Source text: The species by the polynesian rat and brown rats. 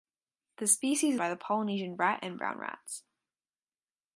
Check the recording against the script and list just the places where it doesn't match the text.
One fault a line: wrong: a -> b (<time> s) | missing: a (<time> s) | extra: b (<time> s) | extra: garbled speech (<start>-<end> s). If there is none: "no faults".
no faults